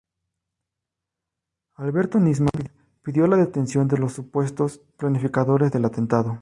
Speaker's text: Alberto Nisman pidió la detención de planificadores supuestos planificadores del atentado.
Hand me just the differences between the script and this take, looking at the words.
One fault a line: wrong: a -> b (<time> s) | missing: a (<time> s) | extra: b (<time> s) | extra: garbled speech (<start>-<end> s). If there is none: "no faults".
wrong: planificadores -> los (4.0 s)